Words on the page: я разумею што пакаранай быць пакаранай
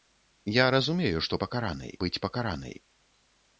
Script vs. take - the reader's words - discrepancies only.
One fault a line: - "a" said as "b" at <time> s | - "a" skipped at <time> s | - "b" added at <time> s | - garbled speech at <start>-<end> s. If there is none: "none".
none